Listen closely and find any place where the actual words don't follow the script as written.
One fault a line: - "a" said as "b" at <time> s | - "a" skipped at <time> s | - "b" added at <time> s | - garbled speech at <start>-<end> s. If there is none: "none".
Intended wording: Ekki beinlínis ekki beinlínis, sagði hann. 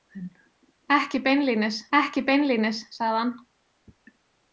none